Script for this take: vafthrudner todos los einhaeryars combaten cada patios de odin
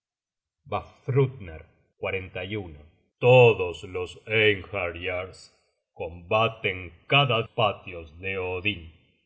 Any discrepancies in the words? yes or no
no